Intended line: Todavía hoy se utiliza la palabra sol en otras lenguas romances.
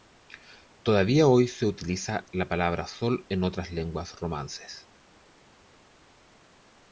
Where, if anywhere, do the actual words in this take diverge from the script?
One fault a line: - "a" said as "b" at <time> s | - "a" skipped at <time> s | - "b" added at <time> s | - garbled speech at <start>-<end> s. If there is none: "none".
none